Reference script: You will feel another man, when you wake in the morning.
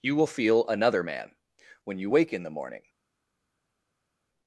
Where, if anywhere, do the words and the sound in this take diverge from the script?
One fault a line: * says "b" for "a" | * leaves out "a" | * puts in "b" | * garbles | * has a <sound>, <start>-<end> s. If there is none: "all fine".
all fine